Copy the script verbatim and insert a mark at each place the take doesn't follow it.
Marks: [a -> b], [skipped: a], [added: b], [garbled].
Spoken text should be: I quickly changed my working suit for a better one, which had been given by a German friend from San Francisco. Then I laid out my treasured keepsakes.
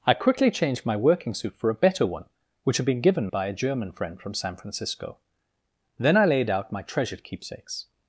I quickly changed my working suit for a better one, which had been given by a German friend from San Francisco. Then I laid out my treasured keepsakes.